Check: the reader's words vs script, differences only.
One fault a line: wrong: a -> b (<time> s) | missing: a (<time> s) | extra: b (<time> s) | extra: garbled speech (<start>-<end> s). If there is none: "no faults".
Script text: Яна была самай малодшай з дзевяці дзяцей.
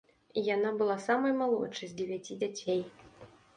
no faults